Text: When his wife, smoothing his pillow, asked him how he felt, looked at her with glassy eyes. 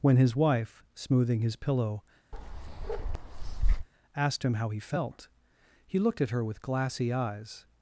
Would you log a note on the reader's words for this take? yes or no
yes